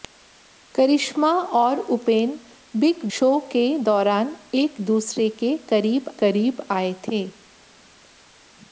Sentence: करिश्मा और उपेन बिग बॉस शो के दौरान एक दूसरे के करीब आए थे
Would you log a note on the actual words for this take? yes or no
yes